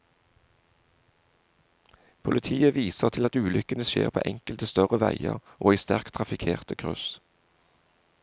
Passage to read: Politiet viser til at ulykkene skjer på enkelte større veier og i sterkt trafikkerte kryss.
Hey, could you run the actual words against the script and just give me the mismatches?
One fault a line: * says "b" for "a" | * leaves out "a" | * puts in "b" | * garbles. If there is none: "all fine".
all fine